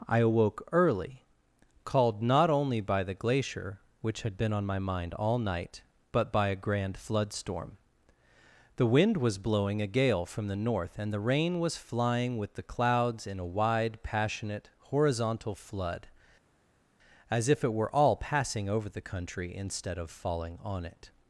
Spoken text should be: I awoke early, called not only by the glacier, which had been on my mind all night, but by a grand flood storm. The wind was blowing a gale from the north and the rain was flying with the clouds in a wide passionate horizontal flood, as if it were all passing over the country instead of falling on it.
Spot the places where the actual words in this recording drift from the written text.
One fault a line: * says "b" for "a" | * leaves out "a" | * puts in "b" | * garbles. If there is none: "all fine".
all fine